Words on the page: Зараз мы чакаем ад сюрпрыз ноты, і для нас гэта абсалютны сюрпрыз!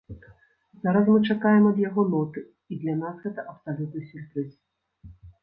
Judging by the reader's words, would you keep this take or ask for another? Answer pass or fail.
fail